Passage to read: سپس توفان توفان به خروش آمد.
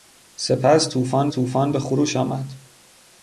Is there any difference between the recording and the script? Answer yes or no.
no